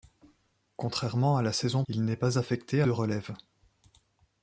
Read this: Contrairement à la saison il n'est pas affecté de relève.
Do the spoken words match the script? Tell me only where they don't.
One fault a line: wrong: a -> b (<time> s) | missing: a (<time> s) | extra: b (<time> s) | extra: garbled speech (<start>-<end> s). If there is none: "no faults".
no faults